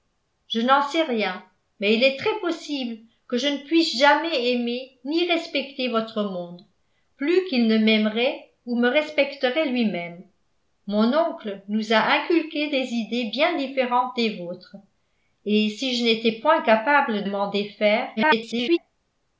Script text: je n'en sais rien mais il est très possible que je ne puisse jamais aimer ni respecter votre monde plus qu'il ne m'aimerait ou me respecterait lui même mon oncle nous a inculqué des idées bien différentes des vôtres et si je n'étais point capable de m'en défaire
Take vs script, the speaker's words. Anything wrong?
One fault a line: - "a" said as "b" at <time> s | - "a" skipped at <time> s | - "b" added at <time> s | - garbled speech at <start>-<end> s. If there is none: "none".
- "de" skipped at 17.2 s
- garbled speech at 18.2-18.8 s